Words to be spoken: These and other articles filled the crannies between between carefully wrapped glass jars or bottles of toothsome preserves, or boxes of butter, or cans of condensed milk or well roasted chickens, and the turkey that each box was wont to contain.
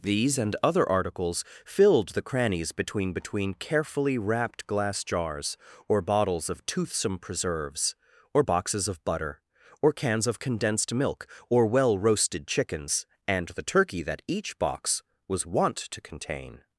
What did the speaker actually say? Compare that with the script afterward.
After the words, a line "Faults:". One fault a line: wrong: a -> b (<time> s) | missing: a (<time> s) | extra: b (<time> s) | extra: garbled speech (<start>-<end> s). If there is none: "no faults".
These and other articles filled the crannies between between carefully wrapped glass jars or bottles of toothsome preserves, or boxes of butter, or cans of condensed milk or well roasted chickens, and the turkey that each box was wont to contain.
Faults:
no faults